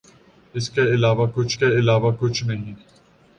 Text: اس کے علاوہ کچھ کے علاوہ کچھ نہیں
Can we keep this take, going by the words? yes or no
yes